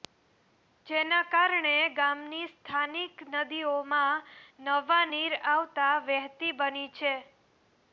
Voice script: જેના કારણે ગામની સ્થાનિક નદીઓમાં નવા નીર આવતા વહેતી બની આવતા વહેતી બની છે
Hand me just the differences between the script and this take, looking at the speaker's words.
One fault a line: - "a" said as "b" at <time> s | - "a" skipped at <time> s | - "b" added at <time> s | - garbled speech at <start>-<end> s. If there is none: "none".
- "આવતા વહેતી બની" skipped at 6.9 s